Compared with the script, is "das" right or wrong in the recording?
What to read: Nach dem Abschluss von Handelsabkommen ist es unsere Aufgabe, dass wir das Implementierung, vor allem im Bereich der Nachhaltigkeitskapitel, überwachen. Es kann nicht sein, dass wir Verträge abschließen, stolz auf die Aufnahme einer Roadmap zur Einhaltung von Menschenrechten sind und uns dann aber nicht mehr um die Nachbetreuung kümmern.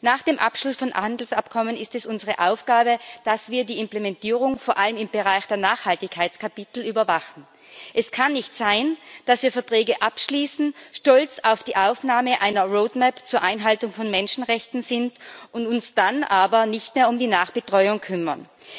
wrong